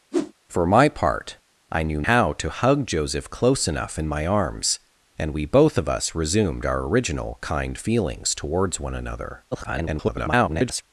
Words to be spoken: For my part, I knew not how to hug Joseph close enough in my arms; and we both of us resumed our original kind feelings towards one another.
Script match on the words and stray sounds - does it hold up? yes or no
no